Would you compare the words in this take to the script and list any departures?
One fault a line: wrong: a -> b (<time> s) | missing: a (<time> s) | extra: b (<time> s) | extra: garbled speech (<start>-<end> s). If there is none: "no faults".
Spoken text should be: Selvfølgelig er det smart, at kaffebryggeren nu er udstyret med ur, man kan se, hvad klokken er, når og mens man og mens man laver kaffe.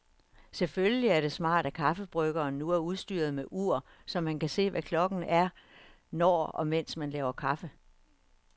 extra: så (4.0 s)
missing: og mens man (7.1 s)